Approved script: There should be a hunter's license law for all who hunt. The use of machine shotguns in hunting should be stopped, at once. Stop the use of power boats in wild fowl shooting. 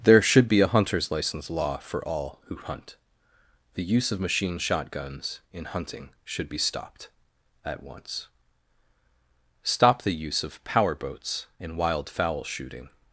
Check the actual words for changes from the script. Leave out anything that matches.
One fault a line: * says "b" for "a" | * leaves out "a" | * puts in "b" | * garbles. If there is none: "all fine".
all fine